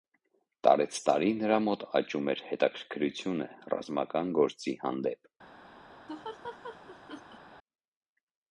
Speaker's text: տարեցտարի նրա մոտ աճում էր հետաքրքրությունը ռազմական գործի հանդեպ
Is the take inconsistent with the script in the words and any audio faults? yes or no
yes